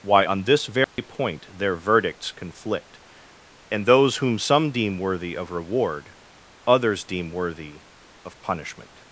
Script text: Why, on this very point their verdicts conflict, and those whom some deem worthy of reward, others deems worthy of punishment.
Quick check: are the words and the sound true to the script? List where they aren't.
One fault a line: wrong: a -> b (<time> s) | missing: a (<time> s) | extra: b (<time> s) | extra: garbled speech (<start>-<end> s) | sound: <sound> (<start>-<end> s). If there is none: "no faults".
sound: dropout (0.8-1.0 s)
wrong: deems -> deem (7.0 s)